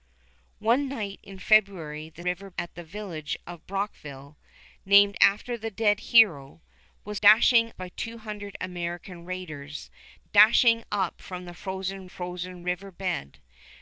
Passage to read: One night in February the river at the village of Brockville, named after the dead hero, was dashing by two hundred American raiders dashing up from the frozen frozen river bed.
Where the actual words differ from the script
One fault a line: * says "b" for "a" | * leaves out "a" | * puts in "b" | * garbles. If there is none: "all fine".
all fine